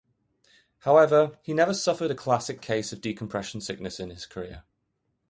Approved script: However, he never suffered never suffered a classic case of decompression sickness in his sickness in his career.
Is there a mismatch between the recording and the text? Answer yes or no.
yes